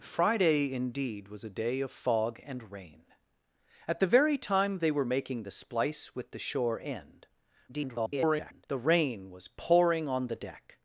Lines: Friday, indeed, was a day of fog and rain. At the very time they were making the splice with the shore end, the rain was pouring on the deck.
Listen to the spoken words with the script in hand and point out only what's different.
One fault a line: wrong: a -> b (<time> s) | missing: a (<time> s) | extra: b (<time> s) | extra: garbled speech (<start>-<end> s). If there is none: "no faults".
extra: garbled speech (7.7-8.7 s)